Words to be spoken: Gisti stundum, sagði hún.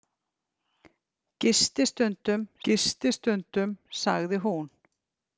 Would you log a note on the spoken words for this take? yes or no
yes